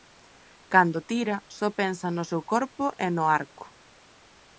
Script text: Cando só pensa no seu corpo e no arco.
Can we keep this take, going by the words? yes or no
no